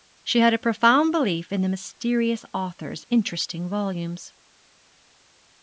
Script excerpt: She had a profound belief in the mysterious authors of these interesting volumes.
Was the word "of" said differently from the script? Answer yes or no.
yes